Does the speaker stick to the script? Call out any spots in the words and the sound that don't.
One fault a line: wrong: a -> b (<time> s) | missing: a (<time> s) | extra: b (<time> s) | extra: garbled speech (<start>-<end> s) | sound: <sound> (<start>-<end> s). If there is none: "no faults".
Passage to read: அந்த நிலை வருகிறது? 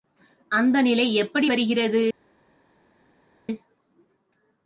extra: எப்படி (1.1 s)